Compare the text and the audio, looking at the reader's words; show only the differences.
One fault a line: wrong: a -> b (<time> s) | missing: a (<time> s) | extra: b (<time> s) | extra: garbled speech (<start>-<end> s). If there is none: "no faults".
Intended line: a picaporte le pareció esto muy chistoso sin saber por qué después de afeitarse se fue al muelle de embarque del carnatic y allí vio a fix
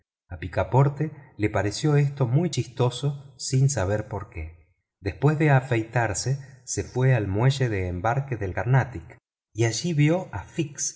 no faults